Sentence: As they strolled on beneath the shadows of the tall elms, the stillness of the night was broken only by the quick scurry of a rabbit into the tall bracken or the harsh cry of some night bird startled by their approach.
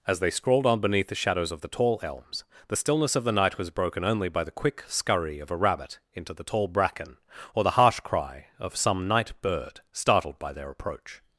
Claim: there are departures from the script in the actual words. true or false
true